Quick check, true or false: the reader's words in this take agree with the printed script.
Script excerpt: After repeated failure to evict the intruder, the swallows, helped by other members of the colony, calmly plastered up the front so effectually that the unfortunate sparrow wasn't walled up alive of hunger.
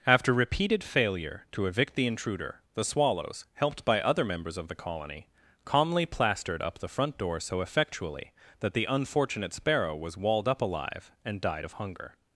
false